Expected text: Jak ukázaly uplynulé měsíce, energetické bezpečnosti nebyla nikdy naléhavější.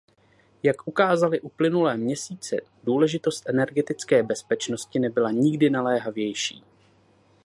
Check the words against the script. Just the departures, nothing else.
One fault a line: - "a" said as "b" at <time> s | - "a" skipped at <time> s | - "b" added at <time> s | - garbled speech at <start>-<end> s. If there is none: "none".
- "důležitost" added at 2.8 s